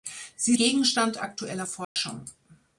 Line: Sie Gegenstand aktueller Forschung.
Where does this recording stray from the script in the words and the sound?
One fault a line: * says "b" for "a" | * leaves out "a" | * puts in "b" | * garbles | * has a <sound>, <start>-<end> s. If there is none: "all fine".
* has a dropout, 1.8-2.0 s